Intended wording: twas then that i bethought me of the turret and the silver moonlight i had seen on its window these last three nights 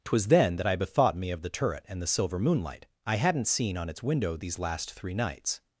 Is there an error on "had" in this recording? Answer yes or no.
yes